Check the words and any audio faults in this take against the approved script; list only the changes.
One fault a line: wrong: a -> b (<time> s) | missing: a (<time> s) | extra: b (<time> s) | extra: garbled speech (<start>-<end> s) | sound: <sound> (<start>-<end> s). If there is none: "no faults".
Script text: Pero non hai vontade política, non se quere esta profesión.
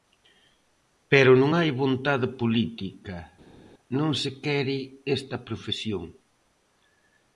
no faults